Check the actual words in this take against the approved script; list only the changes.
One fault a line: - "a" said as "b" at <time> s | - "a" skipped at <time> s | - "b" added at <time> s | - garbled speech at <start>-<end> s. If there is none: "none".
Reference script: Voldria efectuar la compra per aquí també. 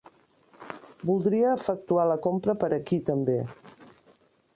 none